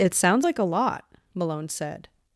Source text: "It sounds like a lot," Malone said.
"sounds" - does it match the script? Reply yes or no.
yes